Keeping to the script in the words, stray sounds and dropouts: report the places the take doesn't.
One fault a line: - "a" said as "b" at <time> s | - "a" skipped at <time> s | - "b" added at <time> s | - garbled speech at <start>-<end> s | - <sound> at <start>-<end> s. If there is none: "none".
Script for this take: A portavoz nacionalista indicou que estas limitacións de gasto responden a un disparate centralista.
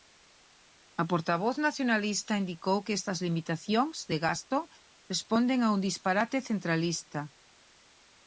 none